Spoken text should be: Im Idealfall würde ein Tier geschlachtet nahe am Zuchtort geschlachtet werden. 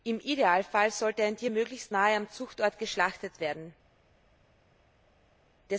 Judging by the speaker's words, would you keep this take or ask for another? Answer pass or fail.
fail